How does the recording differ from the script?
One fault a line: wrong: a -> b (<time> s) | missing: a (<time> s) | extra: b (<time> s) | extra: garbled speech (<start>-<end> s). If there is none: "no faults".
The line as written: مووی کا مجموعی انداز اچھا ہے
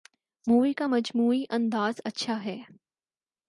no faults